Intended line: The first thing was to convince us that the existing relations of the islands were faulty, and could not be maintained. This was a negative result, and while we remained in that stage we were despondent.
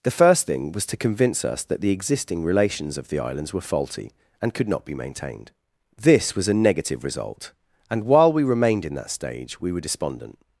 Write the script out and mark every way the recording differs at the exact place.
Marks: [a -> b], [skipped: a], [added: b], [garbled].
The first thing was to convince us that the existing relations of the islands were faulty, and could not be maintained. This was a negative result, and while we remained in that stage we were despondent.